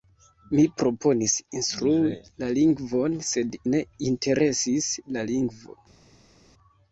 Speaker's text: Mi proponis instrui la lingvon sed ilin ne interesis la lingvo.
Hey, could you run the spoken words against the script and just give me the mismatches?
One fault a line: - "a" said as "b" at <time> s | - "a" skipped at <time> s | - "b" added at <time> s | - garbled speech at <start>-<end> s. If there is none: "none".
- "ilin" skipped at 3.6 s